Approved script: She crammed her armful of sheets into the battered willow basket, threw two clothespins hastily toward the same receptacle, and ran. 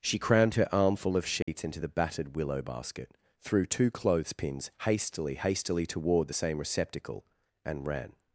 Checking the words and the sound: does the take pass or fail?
fail